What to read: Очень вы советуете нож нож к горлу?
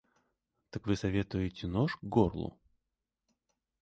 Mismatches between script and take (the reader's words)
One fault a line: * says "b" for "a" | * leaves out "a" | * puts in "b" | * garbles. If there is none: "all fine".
* says "Так" for "Очень"
* leaves out "нож"